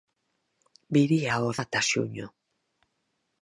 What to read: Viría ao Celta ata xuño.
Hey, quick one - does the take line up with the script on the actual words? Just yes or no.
no